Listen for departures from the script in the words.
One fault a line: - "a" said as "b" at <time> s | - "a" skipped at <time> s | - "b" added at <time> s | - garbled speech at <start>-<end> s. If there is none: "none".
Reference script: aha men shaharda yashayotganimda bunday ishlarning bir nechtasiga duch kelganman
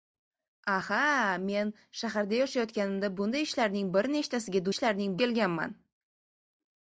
- "duch" said as "ishlarning" at 4.8 s